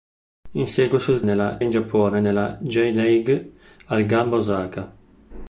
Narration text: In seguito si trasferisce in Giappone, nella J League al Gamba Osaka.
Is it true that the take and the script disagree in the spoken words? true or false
true